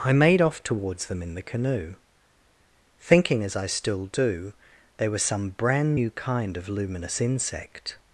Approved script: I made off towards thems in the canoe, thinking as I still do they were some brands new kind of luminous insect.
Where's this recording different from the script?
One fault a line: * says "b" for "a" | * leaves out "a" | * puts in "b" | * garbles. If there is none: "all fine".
* says "them" for "thems"
* says "brand" for "brands"